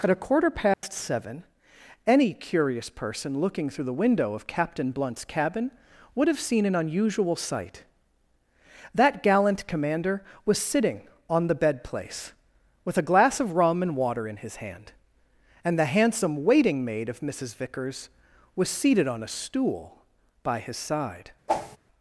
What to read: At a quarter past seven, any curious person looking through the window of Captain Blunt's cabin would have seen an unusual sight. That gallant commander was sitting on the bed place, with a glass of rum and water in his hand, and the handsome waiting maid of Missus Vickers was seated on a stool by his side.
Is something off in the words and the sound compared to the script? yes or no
yes